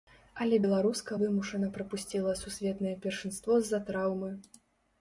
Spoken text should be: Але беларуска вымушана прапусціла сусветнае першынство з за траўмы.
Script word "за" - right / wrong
right